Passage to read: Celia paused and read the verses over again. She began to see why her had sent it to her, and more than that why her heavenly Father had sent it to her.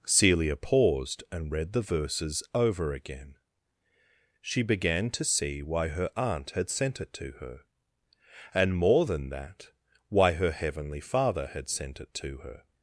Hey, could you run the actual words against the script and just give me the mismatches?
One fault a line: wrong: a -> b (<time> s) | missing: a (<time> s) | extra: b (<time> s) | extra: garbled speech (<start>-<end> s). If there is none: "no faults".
extra: aunt (6.2 s)